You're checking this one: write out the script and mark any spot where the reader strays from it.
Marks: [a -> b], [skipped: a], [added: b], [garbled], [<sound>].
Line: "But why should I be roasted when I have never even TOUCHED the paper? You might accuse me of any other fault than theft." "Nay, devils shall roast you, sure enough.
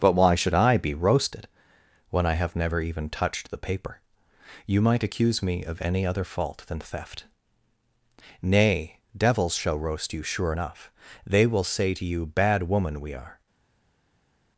"But why should I be roasted when I have never even TOUCHED the paper? You might accuse me of any other fault than theft." "Nay, devils shall roast you, sure enough. [added: They will say to you Bad woman we are]